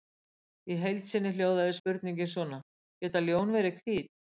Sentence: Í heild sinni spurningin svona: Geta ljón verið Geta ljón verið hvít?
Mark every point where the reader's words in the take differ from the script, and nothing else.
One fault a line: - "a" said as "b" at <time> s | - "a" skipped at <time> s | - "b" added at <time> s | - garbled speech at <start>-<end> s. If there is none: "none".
- "hljóðaði" added at 1.3 s
- "Geta ljón verið" skipped at 3.8 s